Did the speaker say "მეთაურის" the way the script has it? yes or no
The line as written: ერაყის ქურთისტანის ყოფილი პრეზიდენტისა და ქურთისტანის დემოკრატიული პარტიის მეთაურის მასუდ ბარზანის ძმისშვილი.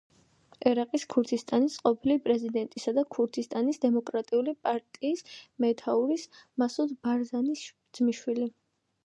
yes